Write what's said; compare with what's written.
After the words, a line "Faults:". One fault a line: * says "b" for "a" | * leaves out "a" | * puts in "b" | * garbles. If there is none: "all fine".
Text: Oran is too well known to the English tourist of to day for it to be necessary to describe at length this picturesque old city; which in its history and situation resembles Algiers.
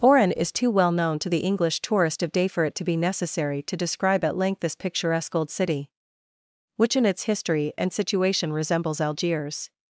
Oran is too well known to the English tourist of day for it to be necessary to describe at length this picturesque old city; which in its history and situation resembles Algiers.
Faults:
* leaves out "to"